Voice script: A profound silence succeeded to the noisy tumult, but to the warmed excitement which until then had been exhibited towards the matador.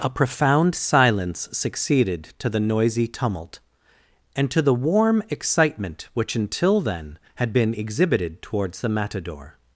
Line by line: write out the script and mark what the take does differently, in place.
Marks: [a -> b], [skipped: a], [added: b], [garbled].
A profound silence succeeded to the noisy tumult, [but -> and] to the [warmed -> warm] excitement which until then had been exhibited towards the matador.